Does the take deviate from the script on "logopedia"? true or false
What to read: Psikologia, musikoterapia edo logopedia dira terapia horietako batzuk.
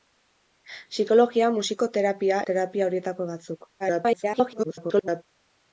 true